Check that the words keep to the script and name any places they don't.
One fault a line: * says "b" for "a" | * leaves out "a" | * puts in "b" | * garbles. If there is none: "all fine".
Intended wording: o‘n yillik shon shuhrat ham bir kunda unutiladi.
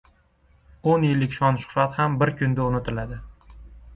all fine